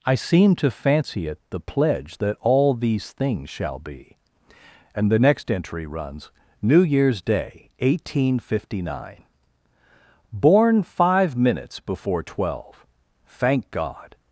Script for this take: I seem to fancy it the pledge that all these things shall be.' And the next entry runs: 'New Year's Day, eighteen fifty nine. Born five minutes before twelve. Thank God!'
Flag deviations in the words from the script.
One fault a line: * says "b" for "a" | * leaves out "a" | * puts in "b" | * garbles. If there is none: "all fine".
all fine